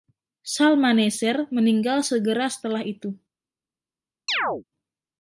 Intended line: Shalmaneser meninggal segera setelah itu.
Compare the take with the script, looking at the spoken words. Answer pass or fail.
pass